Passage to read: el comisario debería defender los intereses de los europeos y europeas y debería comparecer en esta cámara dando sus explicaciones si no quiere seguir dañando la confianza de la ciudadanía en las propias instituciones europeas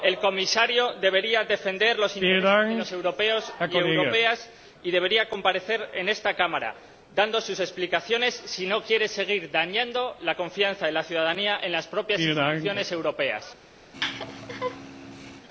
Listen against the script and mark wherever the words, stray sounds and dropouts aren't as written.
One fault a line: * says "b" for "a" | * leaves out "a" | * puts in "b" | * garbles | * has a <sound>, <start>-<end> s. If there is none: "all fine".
* has a laugh, 13.9-15.5 s